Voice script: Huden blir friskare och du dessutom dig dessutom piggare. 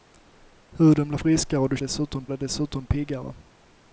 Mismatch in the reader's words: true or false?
false